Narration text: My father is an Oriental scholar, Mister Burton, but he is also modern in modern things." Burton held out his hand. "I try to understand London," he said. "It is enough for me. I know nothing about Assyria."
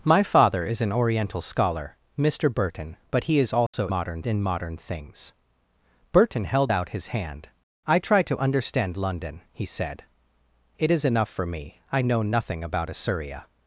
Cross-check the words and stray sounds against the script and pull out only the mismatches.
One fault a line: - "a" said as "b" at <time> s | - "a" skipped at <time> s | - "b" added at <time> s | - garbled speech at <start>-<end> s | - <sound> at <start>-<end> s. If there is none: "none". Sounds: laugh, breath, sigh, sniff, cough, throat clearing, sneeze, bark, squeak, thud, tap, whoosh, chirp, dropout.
- dropout at 3.7-3.7 s